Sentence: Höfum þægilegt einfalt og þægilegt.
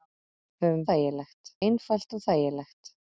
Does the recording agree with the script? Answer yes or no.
yes